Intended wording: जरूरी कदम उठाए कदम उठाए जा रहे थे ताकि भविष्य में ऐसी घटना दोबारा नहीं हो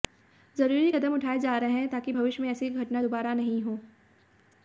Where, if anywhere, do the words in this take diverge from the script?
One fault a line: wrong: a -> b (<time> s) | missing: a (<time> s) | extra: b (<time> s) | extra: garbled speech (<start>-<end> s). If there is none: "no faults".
missing: कदम उठाए (1.4 s)
wrong: थे -> हैं (1.7 s)